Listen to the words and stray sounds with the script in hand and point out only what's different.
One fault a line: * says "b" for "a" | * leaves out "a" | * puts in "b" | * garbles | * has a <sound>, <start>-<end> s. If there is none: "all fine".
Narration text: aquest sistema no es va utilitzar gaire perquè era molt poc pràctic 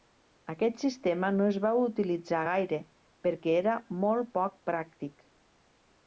all fine